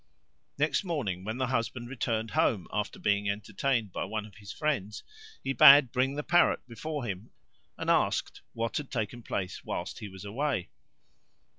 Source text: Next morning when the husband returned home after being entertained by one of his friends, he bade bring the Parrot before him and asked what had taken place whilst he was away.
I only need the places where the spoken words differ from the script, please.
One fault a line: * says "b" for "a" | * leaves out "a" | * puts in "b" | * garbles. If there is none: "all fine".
all fine